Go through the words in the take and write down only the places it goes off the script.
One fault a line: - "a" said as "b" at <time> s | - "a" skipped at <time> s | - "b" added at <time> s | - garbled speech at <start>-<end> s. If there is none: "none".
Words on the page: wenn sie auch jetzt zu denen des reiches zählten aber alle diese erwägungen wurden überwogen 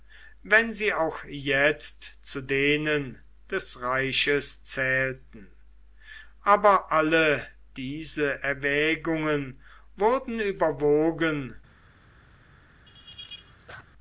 none